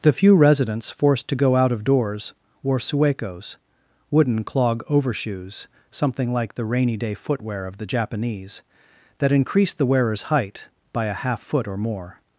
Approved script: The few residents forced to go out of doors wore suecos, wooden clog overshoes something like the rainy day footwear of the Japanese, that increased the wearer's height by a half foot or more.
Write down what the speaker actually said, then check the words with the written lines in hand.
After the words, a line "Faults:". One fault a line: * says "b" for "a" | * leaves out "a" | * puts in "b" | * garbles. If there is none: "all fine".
The few residents forced to go out of doors wore suecos, wooden clog overshoes something like the rainy day footwear of the Japanese, that increased the wearer's height by a half foot or more.
Faults:
all fine